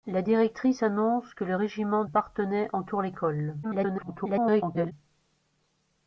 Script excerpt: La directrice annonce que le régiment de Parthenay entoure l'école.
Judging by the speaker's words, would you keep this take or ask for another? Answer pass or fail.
fail